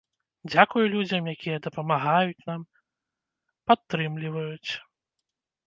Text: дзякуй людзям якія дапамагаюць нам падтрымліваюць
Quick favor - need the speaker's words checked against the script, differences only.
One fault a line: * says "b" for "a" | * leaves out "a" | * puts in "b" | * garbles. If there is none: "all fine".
all fine